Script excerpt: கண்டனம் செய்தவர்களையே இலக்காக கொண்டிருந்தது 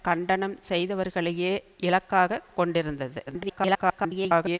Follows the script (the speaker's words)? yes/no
no